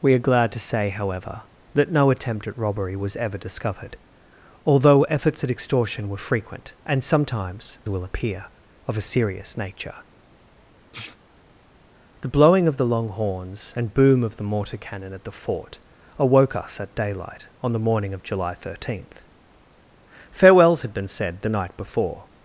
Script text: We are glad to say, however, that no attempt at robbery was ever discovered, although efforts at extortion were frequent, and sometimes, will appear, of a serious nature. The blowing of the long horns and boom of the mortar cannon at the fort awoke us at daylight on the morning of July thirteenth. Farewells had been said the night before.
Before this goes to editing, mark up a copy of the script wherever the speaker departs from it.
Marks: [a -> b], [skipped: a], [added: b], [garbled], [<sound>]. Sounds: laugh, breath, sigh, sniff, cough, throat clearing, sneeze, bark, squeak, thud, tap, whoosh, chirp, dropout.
We are glad to say, however, that no attempt at robbery was ever discovered, although efforts at extortion were frequent, and sometimes, will appear, of a serious nature. [sneeze] The blowing of the long horns and boom of the mortar cannon at the fort awoke us at daylight on the morning of July thirteenth. Farewells had been said the night before.